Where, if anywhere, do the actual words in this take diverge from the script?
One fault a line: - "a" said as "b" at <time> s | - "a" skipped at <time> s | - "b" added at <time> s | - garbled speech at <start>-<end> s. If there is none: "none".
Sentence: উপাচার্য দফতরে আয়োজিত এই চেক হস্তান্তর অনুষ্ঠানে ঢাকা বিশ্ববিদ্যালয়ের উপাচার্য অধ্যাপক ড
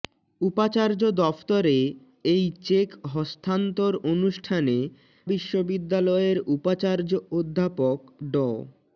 - "আয়োজিত" skipped at 1.8 s
- "ঢাকা" skipped at 4.8 s